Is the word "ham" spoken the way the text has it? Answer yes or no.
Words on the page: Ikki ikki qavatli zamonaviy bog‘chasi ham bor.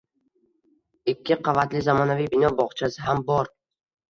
yes